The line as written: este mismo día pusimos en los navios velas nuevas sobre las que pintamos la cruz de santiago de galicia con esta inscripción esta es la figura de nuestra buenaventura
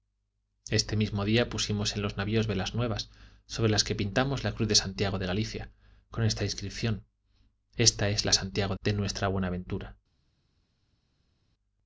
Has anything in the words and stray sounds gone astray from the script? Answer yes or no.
yes